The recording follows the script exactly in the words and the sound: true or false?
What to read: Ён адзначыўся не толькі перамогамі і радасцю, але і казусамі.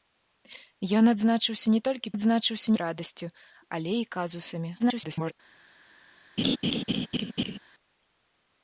false